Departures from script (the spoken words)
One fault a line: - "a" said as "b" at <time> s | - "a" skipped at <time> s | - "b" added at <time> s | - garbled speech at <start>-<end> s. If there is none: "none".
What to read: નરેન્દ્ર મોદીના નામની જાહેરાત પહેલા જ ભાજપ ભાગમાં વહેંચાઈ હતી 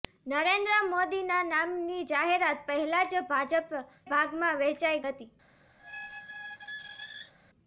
none